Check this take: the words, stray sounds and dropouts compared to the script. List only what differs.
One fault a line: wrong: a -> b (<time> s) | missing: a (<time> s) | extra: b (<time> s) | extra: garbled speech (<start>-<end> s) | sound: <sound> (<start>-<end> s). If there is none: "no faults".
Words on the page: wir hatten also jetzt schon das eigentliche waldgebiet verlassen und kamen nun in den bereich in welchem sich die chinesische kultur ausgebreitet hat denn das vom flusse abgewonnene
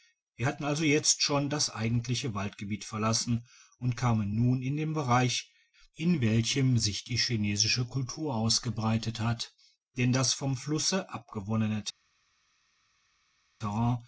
no faults